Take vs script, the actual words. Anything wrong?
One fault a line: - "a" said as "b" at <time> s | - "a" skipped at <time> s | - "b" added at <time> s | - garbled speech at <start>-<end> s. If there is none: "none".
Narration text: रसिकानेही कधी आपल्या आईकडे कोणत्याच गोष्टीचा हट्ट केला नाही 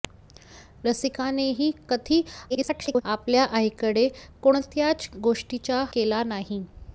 - garbled speech at 2.5-3.0 s
- "हट्ट" skipped at 5.8 s